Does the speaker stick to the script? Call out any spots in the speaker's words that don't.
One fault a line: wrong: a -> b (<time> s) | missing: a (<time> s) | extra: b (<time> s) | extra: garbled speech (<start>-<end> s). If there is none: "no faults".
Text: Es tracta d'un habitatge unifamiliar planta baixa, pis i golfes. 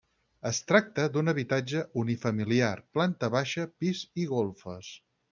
no faults